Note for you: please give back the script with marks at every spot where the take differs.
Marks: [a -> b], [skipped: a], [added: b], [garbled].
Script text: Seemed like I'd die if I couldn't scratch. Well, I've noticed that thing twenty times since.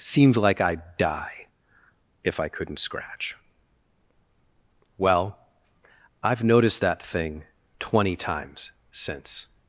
Seemed like I'd die if I couldn't scratch. Well, I've noticed that thing twenty times since.